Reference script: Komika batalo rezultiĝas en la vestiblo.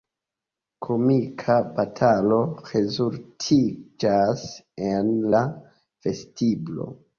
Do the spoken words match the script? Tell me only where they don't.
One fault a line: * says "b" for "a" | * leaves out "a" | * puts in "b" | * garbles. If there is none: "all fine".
all fine